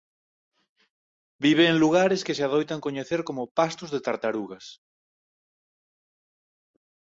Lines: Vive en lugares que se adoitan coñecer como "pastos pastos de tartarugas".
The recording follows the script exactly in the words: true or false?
false